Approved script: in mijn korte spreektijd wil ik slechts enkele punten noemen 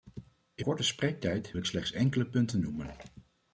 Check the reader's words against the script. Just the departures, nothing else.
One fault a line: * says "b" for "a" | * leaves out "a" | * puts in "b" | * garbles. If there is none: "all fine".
* leaves out "mijn"
* leaves out "wil"